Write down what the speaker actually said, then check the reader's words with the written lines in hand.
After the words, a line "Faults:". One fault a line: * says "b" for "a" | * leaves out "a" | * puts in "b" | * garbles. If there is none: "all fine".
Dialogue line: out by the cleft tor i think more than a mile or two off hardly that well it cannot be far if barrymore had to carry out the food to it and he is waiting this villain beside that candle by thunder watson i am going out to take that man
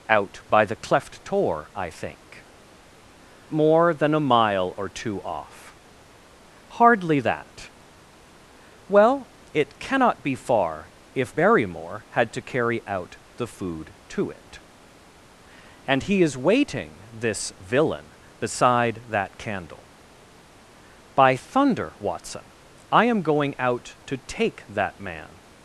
out by the cleft tor i think more than a mile or two off hardly that well it cannot be far if barrymore had to carry out the food to it and he is waiting this villain beside that candle by thunder watson i am going out to take that man
Faults:
all fine